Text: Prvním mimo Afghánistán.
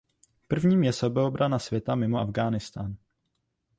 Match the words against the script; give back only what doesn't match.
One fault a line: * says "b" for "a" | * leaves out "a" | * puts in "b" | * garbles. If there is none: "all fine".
* puts in "je sebeobrana světa"